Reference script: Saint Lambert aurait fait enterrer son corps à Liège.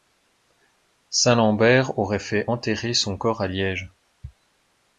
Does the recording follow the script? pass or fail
pass